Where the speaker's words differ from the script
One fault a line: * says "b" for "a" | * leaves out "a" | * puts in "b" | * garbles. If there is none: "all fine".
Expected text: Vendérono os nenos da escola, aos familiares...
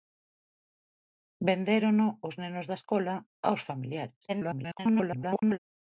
* garbles